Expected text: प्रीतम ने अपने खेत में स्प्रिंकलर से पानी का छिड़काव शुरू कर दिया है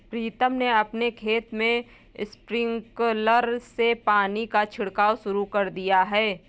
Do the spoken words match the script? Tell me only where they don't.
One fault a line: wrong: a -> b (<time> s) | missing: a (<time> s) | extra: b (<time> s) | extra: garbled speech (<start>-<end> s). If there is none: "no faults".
no faults